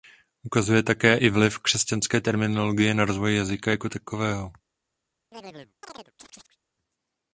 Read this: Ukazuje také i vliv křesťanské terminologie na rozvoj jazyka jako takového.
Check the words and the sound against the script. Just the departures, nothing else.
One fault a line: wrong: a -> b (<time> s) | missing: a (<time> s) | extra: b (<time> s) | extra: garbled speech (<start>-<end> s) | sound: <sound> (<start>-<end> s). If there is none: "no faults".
sound: chirp (5.3-6.6 s)